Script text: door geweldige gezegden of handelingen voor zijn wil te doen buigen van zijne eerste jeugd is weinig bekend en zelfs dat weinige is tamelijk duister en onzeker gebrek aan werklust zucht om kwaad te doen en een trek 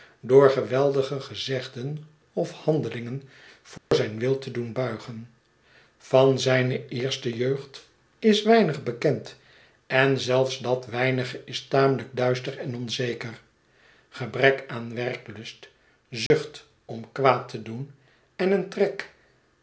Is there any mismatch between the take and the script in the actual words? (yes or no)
no